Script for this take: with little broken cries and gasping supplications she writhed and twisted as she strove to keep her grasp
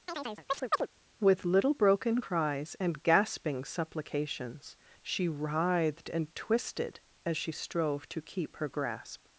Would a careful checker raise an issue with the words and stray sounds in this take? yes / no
yes